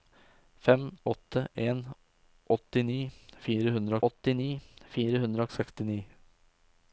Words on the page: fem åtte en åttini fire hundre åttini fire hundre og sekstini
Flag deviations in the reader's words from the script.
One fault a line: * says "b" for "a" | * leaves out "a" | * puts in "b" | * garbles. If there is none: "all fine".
all fine